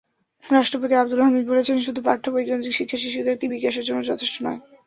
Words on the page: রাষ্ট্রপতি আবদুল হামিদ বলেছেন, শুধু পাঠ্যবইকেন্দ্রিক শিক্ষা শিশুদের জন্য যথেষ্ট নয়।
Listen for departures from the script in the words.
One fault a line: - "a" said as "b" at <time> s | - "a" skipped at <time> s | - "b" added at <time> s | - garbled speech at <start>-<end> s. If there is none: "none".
- "বিকাশের" added at 3.5 s